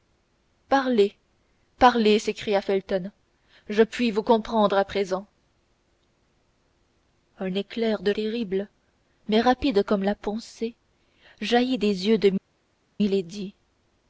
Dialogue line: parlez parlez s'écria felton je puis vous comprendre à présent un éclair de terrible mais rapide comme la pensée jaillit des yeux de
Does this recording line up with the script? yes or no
yes